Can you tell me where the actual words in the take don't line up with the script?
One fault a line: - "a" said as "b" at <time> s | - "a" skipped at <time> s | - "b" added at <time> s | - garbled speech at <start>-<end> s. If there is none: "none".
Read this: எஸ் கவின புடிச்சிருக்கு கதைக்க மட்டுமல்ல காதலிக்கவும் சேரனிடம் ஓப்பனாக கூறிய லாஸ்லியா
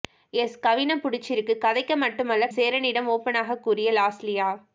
- "காதலிக்கவும்" skipped at 2.5 s